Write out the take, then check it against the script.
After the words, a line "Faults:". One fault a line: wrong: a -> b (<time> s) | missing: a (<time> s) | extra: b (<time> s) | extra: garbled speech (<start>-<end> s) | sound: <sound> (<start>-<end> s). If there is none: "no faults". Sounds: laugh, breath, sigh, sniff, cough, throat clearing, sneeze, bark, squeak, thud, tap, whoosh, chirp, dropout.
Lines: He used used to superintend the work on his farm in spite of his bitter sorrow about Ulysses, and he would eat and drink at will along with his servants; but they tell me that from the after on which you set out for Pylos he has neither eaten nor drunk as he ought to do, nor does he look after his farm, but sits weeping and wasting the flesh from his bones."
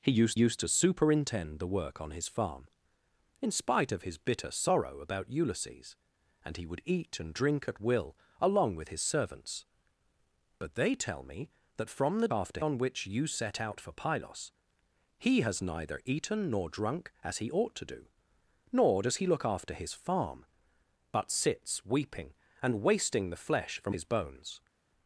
He used used to superintend the work on his farm in spite of his bitter sorrow about Ulysses, and he would eat and drink at will along with his servants; but they tell me that from the after on which you set out for Pylos he has neither eaten nor drunk as he ought to do, nor does he look after his farm, but sits weeping and wasting the flesh from his bones."
Faults:
no faults